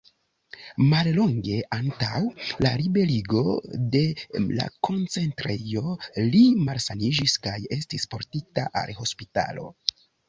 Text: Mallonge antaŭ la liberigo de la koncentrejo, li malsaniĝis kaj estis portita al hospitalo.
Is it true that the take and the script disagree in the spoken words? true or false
false